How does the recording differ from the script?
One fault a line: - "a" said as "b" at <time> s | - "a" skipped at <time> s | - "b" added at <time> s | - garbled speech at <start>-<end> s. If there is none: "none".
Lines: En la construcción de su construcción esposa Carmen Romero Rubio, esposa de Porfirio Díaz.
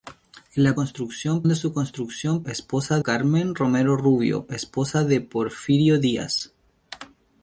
none